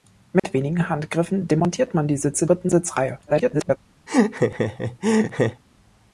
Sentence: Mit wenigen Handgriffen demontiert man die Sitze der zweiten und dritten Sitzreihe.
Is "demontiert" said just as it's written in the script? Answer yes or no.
yes